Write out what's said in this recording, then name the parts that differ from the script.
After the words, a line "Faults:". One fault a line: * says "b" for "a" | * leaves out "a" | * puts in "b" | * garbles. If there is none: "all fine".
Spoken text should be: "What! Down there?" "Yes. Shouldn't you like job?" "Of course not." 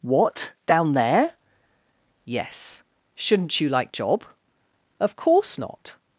"What! Down there?" "Yes. Shouldn't you like job?" "Of course not."
Faults:
all fine